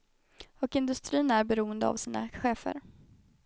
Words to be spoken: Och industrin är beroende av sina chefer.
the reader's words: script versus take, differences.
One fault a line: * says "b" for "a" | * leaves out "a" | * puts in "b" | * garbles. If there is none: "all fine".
all fine